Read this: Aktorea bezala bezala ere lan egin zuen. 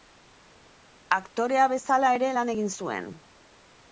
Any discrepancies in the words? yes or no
yes